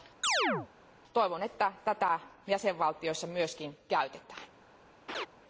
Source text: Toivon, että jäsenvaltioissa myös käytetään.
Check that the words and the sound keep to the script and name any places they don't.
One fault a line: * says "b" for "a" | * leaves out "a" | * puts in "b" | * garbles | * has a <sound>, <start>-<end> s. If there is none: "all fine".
* has a chirp, 0.2-0.7 s
* puts in "tätä"
* has a laugh, 5.1-5.3 s